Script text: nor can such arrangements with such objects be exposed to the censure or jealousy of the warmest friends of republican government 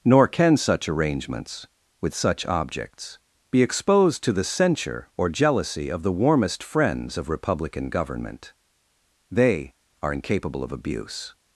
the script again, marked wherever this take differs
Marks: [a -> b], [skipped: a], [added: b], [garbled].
nor can such arrangements with such objects be exposed to the censure or jealousy of the warmest friends of republican government [added: they are incapable of abuse]